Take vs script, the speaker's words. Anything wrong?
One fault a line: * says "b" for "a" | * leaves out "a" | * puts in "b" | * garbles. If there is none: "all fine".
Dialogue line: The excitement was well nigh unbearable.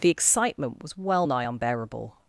all fine